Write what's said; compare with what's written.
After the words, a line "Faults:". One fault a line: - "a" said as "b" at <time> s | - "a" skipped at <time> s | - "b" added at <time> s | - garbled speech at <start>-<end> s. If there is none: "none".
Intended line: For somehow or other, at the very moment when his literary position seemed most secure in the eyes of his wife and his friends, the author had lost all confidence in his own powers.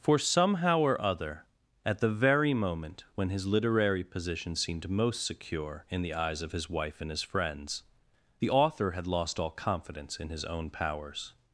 For somehow or other, at the very moment when his literary position seemed most secure in the eyes of his wife and his friends, the author had lost all confidence in his own powers.
Faults:
none